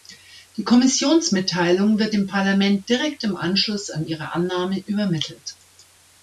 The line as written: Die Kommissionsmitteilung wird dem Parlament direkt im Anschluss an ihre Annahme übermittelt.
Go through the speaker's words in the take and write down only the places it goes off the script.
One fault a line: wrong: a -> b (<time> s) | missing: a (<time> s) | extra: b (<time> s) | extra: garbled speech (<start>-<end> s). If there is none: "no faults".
no faults